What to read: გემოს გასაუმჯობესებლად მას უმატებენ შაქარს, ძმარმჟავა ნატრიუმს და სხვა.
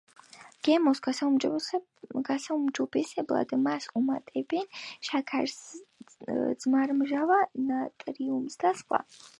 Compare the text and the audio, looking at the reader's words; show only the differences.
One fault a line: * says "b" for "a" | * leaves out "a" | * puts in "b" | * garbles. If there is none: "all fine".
all fine